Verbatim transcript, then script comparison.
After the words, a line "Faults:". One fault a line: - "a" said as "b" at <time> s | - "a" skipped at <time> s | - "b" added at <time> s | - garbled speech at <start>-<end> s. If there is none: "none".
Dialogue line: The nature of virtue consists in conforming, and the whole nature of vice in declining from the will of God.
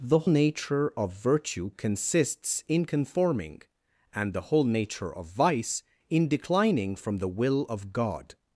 The nature of virtue consists in conforming, and the whole nature of vice in declining from the will of God.
Faults:
none